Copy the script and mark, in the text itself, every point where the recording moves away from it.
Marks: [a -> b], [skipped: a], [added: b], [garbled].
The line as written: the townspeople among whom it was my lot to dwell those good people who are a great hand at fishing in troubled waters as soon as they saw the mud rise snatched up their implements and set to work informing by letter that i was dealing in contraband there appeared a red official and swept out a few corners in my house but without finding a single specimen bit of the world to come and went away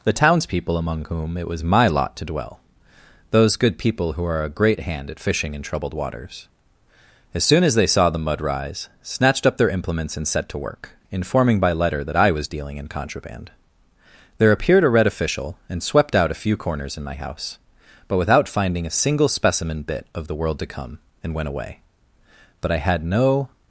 the townspeople among whom it was my lot to dwell those good people who are a great hand at fishing in troubled waters as soon as they saw the mud rise snatched up their implements and set to work informing by letter that i was dealing in contraband there appeared a red official and swept out a few corners in my house but without finding a single specimen bit of the world to come and went away [added: but i had no]